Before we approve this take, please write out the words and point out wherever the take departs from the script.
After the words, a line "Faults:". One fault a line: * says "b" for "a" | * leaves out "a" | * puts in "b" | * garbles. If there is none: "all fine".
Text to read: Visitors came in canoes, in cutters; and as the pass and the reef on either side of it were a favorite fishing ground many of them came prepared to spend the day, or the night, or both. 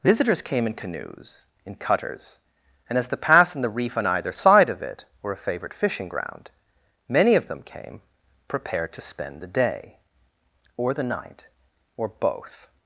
Visitors came in canoes, in cutters; and as the pass and the reef on either side of it were a favorite fishing ground many of them came prepared to spend the day, or the night, or both.
Faults:
all fine